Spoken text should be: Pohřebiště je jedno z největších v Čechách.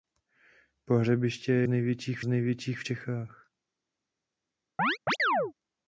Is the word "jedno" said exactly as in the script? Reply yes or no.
no